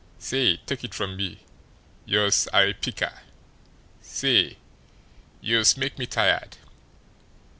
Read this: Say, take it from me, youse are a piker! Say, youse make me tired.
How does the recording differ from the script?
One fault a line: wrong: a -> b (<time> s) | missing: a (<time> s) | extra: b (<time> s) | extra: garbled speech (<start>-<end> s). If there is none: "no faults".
no faults